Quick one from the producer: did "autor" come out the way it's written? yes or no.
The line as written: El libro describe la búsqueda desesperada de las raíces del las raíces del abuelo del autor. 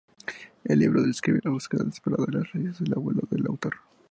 yes